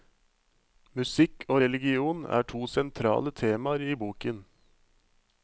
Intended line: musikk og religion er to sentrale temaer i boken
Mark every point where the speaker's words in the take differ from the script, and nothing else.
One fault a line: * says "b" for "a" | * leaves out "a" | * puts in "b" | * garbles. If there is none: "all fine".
all fine